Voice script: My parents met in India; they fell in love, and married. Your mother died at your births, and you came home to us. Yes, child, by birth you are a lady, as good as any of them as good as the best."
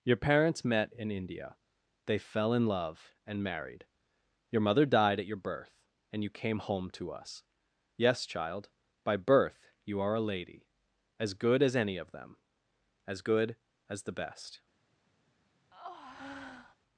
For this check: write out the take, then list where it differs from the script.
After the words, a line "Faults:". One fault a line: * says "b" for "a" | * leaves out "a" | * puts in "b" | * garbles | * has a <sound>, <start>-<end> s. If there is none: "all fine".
Your parents met in India; they fell in love, and married. Your mother died at your birth, and you came home to us. Yes, child, by birth you are a lady, as good as any of them as good as the best."
Faults:
* says "Your" for "My"
* says "birth" for "births"
* has a breath, 15.7-16.8 s